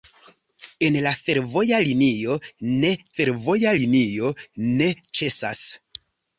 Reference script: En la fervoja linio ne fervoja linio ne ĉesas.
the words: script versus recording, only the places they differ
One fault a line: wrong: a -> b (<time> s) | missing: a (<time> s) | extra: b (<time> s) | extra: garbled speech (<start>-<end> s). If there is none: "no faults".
no faults